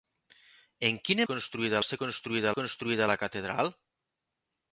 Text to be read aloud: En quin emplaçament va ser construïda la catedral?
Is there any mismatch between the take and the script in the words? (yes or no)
yes